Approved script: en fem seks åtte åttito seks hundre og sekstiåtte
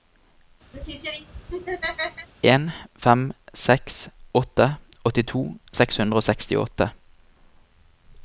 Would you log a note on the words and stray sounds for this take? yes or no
yes